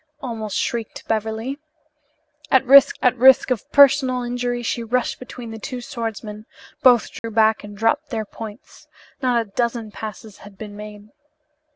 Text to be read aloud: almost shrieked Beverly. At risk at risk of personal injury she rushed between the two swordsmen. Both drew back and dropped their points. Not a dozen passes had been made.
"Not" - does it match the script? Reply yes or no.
yes